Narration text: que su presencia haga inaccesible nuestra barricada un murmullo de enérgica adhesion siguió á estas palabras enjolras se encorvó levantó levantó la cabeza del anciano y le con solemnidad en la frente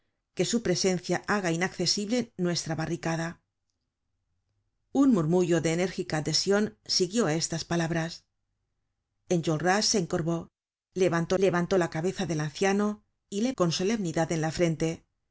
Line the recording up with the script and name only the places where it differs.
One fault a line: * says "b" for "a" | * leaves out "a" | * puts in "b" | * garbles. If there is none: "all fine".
all fine